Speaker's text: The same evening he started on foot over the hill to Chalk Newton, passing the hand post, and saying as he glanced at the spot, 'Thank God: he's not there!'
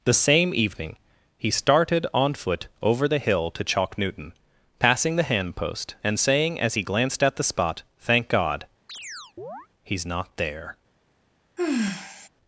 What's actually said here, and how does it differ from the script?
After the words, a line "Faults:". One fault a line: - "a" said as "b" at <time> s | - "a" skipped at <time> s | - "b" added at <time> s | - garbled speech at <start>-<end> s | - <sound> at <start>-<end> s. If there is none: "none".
The same evening he started on foot over the hill to Chalk Newton, passing the hand post, and saying as he glanced at the spot, 'Thank God: he's not there!'
Faults:
- chirp at 8.9-9.7 s
- sigh at 11.6-12.3 s